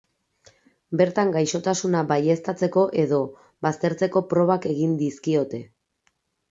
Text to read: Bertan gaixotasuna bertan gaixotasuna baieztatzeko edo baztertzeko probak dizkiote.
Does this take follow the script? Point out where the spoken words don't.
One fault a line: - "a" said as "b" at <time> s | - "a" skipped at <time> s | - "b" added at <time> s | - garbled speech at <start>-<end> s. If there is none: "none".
- "bertan gaixotasuna" skipped at 2.0 s
- "egin" added at 4.8 s